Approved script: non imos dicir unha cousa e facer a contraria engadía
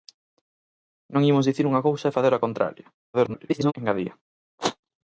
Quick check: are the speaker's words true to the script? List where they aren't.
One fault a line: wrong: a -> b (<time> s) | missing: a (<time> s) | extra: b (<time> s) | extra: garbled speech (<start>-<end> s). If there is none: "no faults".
extra: garbled speech (3.1-3.7 s)